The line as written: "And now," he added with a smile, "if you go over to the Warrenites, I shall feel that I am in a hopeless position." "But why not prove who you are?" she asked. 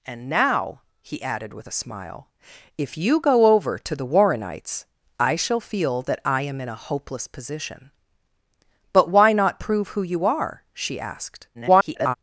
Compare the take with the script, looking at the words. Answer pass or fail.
fail